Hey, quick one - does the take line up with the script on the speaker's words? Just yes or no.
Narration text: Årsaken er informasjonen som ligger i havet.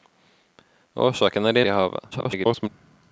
no